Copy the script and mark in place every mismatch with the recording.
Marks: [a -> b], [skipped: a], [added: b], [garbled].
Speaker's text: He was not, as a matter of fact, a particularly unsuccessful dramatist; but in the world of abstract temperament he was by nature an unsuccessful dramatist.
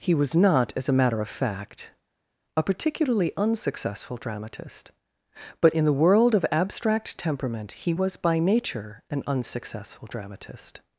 He was not, as a matter of fact, a particularly unsuccessful dramatist; but in the world of abstract temperament he was by nature an unsuccessful dramatist.